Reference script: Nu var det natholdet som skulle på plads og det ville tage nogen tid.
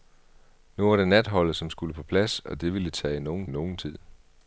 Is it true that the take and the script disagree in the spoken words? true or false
true